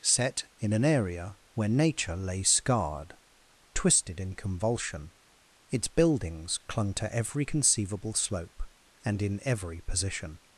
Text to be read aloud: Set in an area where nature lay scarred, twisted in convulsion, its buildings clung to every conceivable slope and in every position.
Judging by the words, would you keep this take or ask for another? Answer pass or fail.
pass